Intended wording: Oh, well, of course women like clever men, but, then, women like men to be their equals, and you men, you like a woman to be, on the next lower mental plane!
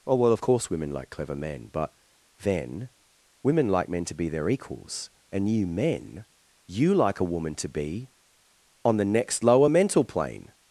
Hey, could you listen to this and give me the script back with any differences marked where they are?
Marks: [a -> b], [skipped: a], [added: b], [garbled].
Oh, well, of course women like clever men, but, then, women like men to be their equals, and you men, you like a woman to be, on the next lower mental plane!